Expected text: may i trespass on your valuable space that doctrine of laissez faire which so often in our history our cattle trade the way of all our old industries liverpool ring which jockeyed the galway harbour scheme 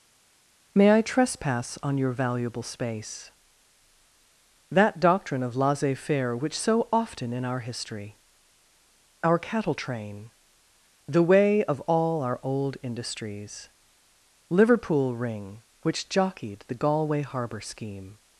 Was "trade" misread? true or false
true